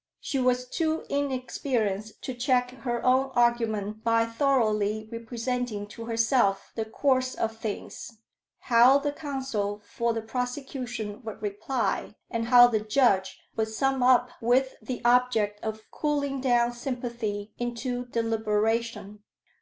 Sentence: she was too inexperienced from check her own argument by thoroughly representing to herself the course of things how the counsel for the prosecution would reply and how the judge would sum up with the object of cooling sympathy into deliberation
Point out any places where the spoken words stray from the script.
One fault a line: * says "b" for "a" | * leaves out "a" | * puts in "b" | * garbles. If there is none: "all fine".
* says "to" for "from"
* puts in "down"